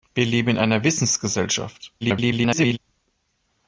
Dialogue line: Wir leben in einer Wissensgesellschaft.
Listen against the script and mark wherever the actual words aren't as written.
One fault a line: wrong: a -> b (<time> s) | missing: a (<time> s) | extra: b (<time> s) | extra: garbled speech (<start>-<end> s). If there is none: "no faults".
extra: garbled speech (2.0-2.8 s)